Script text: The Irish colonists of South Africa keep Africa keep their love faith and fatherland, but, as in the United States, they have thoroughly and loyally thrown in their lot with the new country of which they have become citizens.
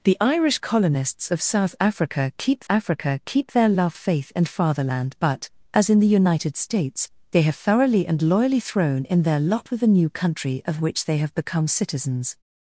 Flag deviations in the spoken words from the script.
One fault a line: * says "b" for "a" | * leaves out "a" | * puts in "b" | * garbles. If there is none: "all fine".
all fine